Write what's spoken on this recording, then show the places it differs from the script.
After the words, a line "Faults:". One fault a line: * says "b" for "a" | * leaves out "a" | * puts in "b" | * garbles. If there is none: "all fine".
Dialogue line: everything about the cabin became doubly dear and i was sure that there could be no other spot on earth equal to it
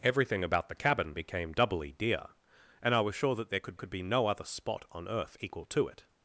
everything about the cabin became doubly dear and i was sure that there could could be no other spot on earth equal to it
Faults:
* puts in "could"